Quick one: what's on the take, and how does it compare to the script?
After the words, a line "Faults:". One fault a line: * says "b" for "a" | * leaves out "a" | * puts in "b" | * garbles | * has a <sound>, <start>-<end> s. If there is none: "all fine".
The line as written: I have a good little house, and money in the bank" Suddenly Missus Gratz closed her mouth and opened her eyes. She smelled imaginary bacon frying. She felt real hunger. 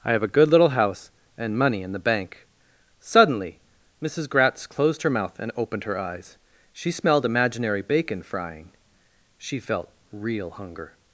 I have a good little house, and money in the bank" Suddenly Missus Gratz closed her mouth and opened her eyes. She smelled imaginary bacon frying. She felt real hunger.
Faults:
all fine